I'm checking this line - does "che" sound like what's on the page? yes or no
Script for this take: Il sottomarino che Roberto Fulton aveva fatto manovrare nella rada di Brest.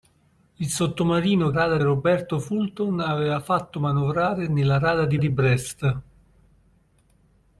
no